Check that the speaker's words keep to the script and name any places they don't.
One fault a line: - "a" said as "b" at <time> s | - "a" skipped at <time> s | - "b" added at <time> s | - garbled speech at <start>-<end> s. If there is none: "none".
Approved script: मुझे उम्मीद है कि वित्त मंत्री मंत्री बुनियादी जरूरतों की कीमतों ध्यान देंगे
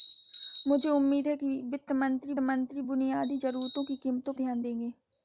none